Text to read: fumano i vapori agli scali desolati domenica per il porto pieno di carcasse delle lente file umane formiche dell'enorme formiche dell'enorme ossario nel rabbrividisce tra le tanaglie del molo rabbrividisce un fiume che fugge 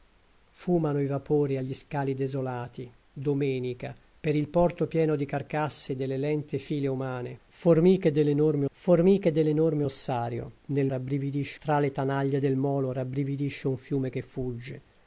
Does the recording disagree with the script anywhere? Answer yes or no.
no